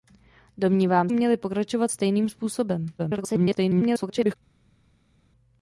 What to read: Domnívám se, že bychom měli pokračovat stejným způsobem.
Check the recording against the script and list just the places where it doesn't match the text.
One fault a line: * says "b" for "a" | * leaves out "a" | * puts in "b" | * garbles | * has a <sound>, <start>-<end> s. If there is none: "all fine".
* leaves out "se že bychom"
* garbles